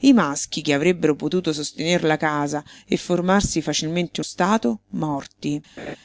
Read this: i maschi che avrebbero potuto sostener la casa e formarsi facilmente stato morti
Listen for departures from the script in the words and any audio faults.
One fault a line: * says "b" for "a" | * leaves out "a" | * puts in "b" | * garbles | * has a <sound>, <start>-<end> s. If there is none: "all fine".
* has a laugh, 5.8-6.0 s